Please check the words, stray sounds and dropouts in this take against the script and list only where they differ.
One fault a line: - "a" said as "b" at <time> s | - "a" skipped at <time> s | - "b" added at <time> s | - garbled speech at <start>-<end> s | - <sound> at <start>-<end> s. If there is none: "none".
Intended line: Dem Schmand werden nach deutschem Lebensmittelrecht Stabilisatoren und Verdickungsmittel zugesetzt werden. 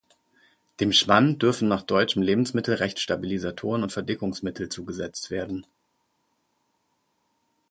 - "werden" said as "dürfen" at 1.4 s